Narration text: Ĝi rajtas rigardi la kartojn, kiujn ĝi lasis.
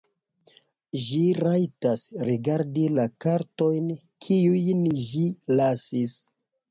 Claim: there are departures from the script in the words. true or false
false